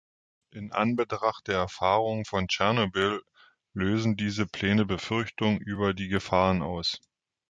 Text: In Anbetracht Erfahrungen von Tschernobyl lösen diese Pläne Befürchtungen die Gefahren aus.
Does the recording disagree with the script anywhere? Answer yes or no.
yes